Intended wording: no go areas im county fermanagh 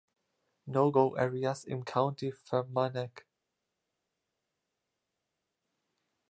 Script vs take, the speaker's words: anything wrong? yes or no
no